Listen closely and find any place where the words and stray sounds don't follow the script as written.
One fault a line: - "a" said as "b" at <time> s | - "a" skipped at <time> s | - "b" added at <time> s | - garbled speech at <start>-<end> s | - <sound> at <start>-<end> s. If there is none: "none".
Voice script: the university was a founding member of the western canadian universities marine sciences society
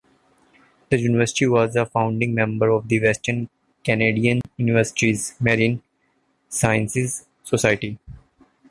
- dropout at 4.4-4.4 s